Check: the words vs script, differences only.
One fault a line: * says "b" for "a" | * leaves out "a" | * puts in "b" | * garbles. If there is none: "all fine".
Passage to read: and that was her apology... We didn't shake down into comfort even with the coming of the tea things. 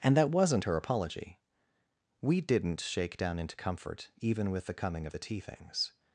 * says "wasn't" for "was"